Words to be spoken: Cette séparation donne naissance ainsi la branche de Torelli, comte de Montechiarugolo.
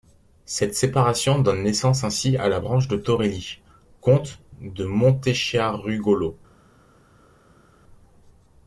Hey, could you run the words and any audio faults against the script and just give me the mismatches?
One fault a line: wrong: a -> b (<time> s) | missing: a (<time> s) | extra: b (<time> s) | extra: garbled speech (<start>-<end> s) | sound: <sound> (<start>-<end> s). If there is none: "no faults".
extra: à (2.4 s)